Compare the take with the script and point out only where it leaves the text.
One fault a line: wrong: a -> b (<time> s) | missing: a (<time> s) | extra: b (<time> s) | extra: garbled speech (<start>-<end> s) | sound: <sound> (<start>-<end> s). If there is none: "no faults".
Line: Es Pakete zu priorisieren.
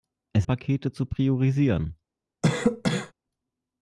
sound: cough (2.4-3.1 s)